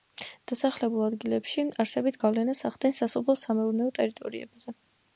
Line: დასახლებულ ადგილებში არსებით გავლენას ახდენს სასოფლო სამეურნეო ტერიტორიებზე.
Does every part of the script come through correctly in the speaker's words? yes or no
yes